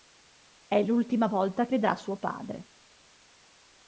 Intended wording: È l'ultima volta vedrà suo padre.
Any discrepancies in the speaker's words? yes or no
no